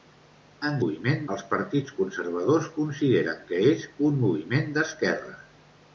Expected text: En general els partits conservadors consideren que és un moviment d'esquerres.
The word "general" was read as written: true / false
false